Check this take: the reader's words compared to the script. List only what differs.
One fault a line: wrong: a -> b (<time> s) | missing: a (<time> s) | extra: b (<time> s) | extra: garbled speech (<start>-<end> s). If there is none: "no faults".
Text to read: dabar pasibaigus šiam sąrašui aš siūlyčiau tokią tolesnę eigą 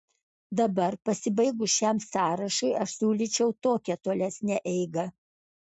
no faults